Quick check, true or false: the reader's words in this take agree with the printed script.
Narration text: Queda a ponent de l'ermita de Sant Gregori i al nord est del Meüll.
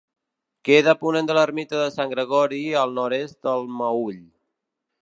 true